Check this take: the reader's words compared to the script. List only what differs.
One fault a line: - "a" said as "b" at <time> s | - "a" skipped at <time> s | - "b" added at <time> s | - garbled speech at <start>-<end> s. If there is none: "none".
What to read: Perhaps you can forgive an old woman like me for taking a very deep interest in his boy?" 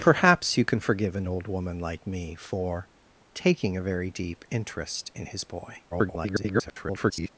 - garbled speech at 5.9-7.3 s